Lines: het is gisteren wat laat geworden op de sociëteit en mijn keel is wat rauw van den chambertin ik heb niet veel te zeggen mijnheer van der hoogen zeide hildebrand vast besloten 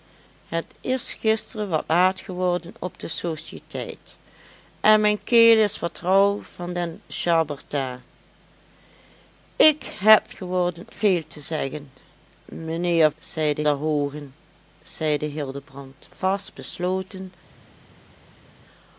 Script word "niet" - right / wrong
wrong